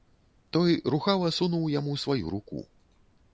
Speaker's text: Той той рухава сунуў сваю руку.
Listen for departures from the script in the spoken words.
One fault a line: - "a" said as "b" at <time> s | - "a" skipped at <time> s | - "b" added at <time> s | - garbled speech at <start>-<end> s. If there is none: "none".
- "той" skipped at 0.7 s
- "яму" added at 1.8 s